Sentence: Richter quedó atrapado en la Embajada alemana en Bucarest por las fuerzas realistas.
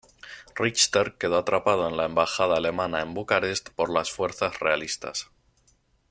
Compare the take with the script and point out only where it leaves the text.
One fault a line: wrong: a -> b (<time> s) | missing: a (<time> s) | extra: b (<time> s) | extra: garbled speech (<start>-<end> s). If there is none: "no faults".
no faults